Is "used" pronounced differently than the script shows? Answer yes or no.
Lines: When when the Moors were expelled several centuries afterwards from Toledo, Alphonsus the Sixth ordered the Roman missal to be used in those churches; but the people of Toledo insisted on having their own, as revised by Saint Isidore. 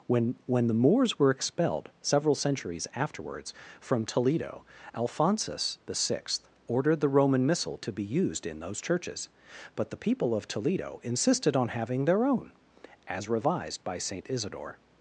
no